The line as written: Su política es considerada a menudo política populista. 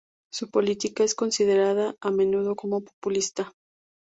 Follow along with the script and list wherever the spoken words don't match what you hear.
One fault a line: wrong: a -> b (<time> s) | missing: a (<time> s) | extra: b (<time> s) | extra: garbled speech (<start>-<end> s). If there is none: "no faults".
wrong: política -> como (2.5 s)